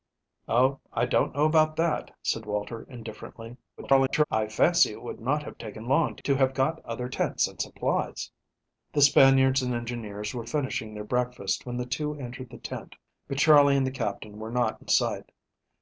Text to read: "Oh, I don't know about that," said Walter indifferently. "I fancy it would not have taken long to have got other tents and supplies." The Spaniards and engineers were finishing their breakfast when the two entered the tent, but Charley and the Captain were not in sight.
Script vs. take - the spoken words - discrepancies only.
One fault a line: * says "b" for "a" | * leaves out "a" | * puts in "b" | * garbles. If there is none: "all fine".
* garbles